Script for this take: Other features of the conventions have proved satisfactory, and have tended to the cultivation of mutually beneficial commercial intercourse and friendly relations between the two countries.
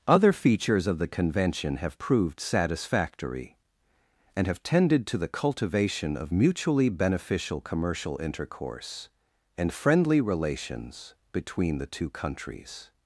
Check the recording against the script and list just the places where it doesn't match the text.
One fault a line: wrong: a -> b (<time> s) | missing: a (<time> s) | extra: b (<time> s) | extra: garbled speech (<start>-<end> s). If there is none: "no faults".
wrong: conventions -> convention (1.1 s)